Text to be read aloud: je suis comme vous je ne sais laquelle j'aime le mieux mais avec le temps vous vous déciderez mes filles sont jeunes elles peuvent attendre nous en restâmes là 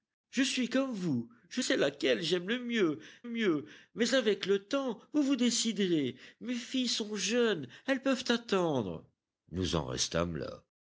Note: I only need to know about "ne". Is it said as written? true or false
false